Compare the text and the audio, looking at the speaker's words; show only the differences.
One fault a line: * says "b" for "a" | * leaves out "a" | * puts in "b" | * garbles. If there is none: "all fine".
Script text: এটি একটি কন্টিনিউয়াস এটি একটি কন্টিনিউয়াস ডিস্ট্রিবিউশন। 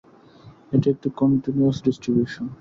* leaves out "এটি একটি কন্টিনিউয়াস"